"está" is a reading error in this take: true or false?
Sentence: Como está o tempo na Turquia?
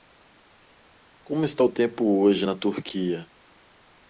false